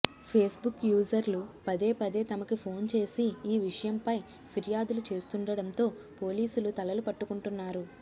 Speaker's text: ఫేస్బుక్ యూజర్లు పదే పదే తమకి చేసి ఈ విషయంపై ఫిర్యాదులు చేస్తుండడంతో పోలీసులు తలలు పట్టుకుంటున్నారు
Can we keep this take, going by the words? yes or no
no